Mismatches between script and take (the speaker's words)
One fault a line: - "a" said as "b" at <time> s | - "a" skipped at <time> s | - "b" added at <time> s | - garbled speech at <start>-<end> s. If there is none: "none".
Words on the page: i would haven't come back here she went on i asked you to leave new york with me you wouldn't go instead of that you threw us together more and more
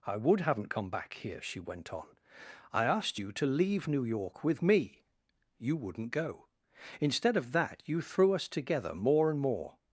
none